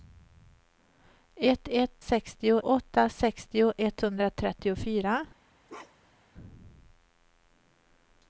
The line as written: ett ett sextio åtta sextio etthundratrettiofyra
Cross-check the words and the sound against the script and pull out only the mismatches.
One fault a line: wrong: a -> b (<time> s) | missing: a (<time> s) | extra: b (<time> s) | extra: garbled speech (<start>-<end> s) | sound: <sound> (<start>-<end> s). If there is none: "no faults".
sound: bark (5.7-6.3 s)